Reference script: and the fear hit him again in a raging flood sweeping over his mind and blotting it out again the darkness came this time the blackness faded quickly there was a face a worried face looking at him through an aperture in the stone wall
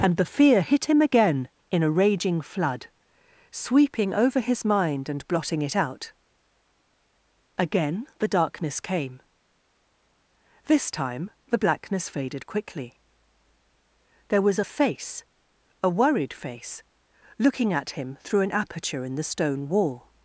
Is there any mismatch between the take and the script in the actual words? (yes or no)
no